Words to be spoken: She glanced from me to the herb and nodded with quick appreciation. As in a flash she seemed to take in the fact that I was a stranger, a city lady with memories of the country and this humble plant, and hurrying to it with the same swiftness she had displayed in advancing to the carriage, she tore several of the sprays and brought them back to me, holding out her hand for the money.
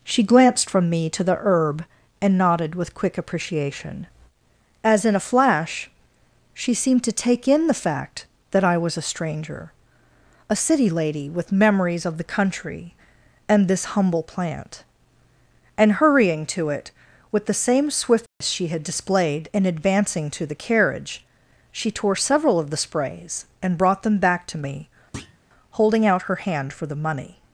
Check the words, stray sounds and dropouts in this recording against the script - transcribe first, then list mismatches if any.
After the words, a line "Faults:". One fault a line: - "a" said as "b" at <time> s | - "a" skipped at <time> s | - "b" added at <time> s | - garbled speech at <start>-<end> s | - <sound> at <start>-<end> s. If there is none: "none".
She glanced from me to the herb and nodded with quick appreciation. As in a flash she seemed to take in the fact that I was a stranger, a city lady with memories of the country and this humble plant, and hurrying to it with the same swiftness she had displayed in advancing to the carriage, she tore several of the sprays and brought them back to me, holding out her hand for the money.
Faults:
- dropout at 18.3-18.4 s
- thud at 25.1-25.4 s